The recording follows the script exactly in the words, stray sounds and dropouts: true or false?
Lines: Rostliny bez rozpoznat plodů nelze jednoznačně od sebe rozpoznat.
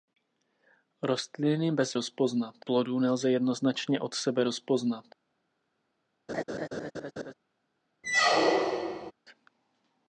false